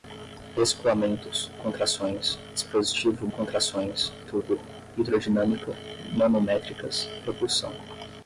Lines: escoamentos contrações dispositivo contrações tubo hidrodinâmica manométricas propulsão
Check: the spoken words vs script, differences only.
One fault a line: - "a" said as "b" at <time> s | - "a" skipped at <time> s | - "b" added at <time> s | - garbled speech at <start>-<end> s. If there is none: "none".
none